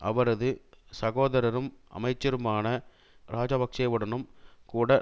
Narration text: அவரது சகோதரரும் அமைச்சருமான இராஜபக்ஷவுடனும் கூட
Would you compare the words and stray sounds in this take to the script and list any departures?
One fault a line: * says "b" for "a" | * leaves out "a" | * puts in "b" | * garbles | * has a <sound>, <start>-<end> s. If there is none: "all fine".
all fine